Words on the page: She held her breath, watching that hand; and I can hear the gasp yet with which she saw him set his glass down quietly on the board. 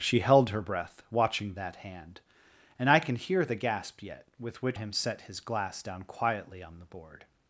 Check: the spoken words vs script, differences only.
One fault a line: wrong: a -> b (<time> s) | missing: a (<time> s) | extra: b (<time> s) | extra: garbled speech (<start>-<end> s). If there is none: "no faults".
missing: she saw (4.8 s)